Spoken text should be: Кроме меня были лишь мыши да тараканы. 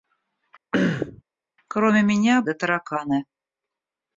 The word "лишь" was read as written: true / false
false